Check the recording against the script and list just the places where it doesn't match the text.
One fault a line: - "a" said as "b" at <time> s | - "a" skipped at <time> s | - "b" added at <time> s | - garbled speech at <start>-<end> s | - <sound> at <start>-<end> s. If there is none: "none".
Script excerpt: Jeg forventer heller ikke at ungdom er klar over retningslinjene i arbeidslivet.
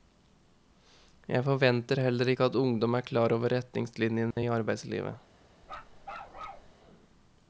- dropout at 4.3-4.4 s
- bark at 5.6-6.7 s